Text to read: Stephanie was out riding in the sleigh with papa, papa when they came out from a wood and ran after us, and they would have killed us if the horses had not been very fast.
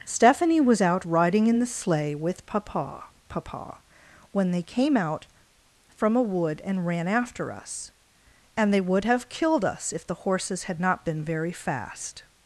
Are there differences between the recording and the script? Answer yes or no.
no